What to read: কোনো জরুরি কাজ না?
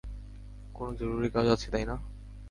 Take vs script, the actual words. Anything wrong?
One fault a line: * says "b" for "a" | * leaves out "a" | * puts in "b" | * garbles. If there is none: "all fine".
* puts in "আছে তাই"